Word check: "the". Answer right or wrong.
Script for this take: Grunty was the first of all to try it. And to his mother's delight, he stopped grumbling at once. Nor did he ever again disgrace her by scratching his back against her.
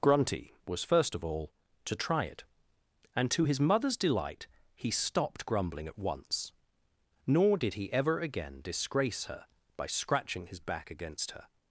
wrong